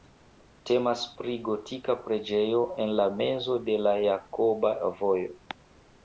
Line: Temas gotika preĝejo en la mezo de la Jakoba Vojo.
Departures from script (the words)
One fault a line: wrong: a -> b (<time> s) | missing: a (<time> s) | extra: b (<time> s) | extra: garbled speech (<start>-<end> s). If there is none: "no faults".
extra: pri (1.2 s)